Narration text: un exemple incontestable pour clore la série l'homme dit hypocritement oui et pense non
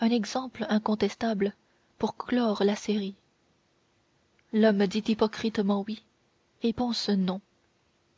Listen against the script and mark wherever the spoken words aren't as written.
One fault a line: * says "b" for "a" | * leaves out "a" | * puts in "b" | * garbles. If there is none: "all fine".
all fine